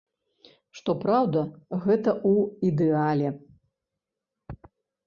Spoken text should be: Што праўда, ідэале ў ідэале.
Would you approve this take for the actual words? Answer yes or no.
no